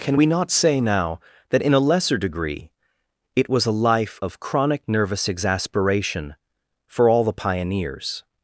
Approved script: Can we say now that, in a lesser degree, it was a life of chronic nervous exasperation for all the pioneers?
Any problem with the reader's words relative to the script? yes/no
yes